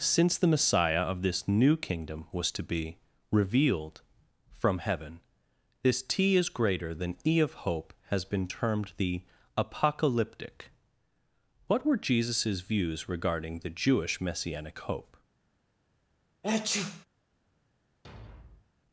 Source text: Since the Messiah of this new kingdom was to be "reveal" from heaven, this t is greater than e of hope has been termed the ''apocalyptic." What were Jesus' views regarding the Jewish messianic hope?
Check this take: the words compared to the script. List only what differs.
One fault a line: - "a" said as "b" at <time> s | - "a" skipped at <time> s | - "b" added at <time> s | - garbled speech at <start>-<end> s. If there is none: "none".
- "reveal" said as "revealed" at 3.3 s